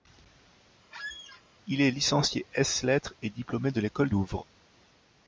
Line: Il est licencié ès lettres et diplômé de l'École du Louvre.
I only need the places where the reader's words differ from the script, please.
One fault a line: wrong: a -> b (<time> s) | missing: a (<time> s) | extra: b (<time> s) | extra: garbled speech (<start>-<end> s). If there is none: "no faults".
missing: du (4.1 s)